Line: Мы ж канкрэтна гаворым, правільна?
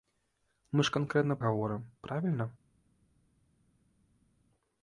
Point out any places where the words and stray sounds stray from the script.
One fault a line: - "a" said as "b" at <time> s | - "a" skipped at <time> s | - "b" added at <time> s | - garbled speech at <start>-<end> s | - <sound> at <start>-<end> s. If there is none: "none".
none